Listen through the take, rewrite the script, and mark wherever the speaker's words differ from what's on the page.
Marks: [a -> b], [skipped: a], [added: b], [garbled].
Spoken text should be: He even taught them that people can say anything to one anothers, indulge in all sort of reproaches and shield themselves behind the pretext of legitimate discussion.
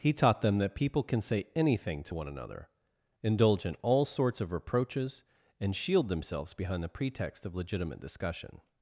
He [skipped: even] taught them that people can say anything to one [anothers, -> another] indulge in all [sort -> sorts] of reproaches and shield themselves behind the pretext of legitimate discussion.